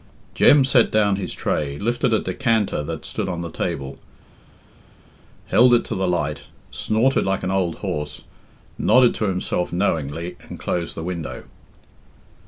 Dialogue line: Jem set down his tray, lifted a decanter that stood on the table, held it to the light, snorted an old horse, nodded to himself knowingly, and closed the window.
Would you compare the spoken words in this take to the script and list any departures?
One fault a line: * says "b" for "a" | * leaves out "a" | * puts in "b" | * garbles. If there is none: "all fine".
* puts in "like"